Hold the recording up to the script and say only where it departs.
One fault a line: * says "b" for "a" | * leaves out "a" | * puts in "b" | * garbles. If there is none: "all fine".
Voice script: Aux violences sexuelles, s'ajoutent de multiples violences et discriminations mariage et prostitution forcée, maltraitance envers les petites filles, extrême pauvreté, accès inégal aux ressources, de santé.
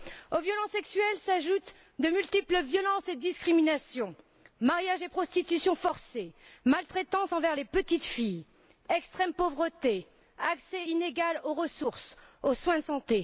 * puts in "aux soins"